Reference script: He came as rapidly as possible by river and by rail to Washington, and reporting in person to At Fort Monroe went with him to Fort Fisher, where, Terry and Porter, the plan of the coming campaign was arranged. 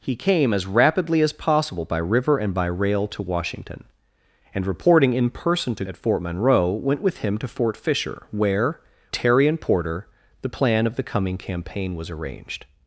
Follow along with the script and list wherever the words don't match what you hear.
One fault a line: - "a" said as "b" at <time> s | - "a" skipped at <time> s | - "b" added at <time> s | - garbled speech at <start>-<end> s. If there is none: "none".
none